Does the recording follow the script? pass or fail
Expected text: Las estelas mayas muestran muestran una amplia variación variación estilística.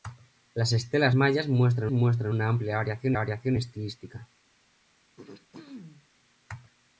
pass